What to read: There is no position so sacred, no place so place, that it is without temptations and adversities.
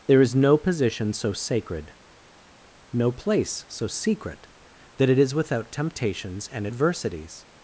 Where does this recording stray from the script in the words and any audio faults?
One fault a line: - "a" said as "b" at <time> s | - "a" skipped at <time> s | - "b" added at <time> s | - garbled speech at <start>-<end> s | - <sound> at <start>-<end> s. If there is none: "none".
- "place" said as "secret" at 3.9 s